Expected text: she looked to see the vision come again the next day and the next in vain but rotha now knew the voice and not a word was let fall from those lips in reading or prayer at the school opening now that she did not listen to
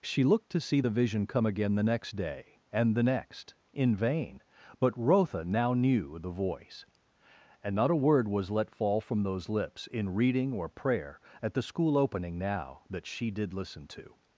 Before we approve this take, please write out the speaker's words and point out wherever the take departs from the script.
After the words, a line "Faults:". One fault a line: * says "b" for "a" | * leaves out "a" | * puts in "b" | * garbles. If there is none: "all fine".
she looked to see the vision come again the next day and the next in vain but rotha now knew the voice and not a word was let fall from those lips in reading or prayer at the school opening now that she did listen to
Faults:
* leaves out "not"